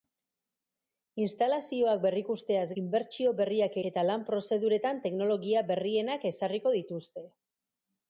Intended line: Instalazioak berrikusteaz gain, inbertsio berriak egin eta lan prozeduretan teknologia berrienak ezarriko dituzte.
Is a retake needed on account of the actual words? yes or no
yes